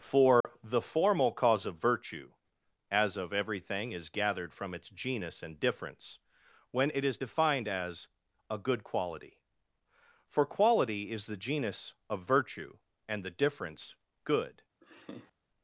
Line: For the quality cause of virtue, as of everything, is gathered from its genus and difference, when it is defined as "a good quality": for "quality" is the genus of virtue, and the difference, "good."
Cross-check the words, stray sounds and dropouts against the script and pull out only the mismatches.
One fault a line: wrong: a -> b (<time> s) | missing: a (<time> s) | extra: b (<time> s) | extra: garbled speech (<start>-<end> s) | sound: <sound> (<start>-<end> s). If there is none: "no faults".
sound: dropout (0.4-0.4 s)
wrong: quality -> formal (0.8 s)
sound: laugh (14.8-15.3 s)